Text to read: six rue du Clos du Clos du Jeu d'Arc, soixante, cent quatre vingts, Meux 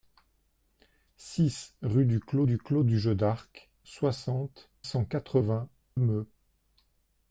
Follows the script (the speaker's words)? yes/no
yes